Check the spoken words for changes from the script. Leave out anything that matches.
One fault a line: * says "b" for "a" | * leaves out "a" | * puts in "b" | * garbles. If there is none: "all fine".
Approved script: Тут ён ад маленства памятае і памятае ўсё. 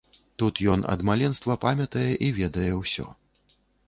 * says "ведае" for "памятае"